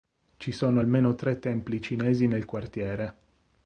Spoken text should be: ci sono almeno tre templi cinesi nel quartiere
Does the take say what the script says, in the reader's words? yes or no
yes